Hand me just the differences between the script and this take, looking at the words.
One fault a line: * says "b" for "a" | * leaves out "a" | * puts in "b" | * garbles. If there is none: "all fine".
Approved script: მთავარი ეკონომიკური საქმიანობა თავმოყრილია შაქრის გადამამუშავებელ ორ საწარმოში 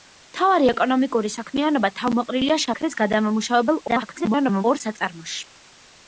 * garbles